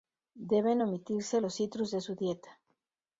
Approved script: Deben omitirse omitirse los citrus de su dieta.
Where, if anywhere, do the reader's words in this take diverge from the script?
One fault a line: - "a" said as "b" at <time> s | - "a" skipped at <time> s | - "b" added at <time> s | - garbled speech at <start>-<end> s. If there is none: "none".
- "omitirse" skipped at 1.4 s